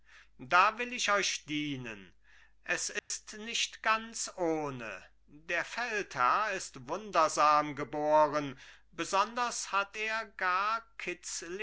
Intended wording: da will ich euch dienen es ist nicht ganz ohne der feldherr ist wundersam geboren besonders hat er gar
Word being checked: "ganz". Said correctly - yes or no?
yes